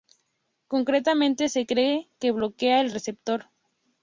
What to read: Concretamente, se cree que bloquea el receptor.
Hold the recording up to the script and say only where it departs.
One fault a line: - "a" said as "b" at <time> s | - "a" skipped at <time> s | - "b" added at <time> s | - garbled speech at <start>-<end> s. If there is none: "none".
none